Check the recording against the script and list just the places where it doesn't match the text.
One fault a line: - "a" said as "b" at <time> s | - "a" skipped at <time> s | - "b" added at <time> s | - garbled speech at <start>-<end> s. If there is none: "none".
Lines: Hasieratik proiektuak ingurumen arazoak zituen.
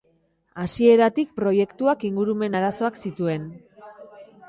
none